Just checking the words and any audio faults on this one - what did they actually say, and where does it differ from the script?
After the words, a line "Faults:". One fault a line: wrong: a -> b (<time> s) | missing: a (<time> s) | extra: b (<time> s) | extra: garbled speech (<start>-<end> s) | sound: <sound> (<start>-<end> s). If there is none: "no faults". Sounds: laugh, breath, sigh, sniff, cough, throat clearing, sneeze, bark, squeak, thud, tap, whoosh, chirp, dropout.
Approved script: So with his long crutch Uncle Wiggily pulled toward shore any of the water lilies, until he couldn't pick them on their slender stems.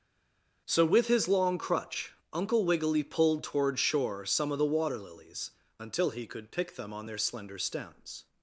So with his long crutch Uncle Wiggily pulled toward shore some of the water lilies, until he could pick them on their slender stems.
Faults:
wrong: any -> some (4.2 s)
wrong: couldn't -> could (6.3 s)